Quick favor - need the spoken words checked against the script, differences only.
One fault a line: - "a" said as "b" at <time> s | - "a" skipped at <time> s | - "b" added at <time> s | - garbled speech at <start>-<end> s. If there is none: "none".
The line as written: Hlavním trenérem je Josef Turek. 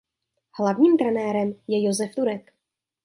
none